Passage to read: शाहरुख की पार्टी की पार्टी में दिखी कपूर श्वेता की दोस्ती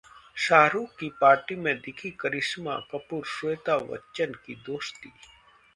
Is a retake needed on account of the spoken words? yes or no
yes